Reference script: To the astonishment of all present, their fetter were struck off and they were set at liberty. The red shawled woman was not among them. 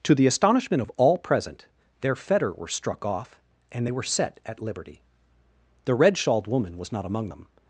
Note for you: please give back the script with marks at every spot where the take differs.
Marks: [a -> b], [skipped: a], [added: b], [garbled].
To the astonishment of all present, their fetter were struck off and they were set at liberty. The red shawled woman was not among them.